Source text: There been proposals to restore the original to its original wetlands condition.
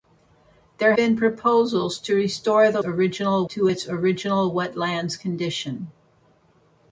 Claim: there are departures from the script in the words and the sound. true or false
false